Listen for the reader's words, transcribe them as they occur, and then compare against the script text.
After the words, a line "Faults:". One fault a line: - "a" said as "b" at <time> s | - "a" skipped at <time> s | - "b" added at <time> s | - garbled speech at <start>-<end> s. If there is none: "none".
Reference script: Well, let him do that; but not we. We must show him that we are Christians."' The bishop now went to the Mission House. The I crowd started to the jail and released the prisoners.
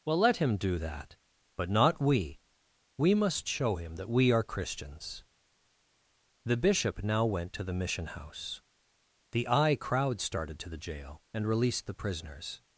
Well, let him do that; but not we. We must show him that we are Christians."' The bishop now went to the Mission House. The I crowd started to the jail and released the prisoners.
Faults:
none